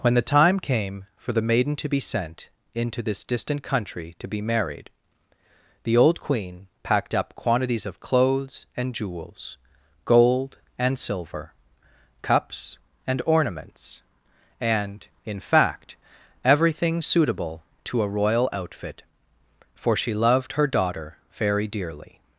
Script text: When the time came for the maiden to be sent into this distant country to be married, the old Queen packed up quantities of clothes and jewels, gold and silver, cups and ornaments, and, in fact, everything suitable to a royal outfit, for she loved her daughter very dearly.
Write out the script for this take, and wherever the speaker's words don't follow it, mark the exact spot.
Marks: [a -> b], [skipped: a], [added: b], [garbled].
When the time came for the maiden to be sent into this distant country to be married, the old Queen packed up quantities of clothes and jewels, gold and silver, cups and ornaments, and, in fact, everything suitable to a royal outfit, for she loved her daughter very dearly.